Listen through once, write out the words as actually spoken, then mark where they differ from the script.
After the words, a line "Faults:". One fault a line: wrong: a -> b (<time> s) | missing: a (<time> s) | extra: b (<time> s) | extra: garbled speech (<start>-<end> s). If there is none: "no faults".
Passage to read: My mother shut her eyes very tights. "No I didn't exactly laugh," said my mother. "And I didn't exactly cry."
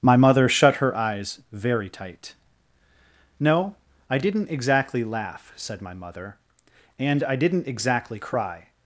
My mother shut her eyes very tight. "No I didn't exactly laugh," said my mother. "And I didn't exactly cry."
Faults:
wrong: tights -> tight (1.9 s)